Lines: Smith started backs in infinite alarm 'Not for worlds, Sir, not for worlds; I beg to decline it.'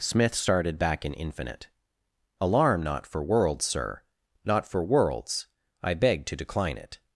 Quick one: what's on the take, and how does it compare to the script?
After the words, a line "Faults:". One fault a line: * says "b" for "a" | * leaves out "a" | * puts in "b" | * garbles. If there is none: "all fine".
Smith started back in infinite alarm 'Not for worlds, Sir, not for worlds; I beg to decline it.'
Faults:
* says "back" for "backs"